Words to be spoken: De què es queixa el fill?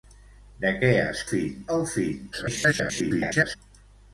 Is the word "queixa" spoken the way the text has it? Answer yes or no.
no